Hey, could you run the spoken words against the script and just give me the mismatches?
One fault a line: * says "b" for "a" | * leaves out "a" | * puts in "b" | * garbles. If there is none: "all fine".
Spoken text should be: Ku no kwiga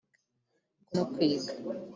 all fine